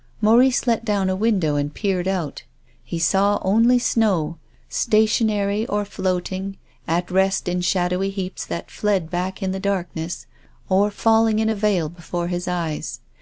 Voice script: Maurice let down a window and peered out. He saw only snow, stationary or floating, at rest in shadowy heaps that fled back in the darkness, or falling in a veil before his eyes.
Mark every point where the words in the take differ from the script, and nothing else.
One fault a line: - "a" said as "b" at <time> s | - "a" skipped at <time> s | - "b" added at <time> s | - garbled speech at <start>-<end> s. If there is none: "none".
none